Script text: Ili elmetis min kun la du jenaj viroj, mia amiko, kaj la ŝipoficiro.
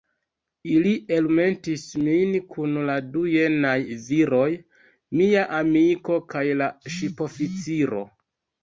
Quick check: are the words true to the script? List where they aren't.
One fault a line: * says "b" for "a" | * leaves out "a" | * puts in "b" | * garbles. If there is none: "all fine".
all fine